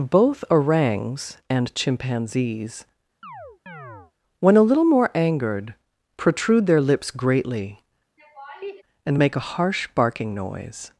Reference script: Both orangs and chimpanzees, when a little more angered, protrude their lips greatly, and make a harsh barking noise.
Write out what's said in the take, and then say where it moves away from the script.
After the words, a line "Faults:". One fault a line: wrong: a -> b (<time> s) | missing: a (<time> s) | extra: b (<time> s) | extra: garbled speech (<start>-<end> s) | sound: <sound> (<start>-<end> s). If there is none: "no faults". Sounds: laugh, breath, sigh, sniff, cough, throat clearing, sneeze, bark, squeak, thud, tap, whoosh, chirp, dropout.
Both orangs and chimpanzees, when a little more angered, protrude their lips greatly, and make a harsh barking noise.
Faults:
sound: chirp (3.2-4.1 s)
sound: laugh (8.2-8.8 s)